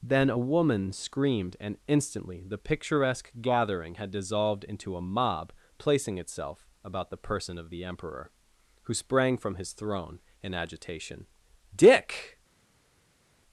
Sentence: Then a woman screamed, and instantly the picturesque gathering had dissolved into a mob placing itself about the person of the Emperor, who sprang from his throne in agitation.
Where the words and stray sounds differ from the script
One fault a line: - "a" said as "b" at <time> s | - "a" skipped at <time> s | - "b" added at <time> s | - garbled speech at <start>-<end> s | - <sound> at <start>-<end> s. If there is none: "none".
- "Dick" added at 11.7 s